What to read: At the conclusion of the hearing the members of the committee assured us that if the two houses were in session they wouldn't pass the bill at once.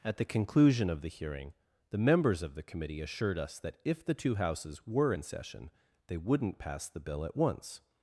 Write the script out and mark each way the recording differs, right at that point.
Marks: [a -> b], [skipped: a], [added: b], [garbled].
At the conclusion of the hearing the members of the committee assured us that if the two houses were in session they wouldn't pass the bill at once.